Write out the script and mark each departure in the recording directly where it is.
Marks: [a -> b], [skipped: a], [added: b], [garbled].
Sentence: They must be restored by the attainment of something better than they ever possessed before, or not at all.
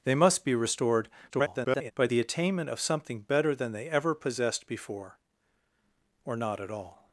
They must be restored [garbled] by the attainment of something better than they ever possessed before, or not at all.